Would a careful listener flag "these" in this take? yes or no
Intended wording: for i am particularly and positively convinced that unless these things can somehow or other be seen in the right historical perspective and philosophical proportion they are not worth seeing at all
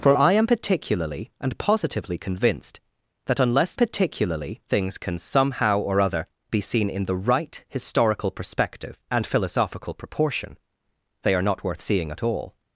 yes